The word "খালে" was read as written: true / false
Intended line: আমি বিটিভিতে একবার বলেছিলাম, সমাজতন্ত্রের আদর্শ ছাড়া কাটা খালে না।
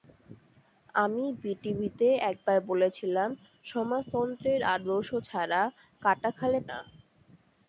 true